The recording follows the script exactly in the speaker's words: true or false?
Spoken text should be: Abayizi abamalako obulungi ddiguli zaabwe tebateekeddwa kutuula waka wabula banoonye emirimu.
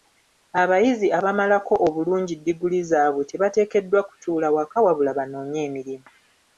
true